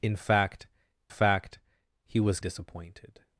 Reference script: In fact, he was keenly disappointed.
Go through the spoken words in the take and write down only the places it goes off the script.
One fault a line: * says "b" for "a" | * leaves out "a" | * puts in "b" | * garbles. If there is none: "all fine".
* puts in "fact"
* leaves out "keenly"